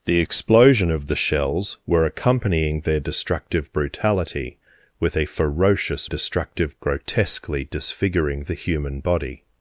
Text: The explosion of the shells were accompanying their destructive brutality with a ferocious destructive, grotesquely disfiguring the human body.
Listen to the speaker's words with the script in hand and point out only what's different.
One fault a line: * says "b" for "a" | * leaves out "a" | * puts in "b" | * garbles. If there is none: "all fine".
all fine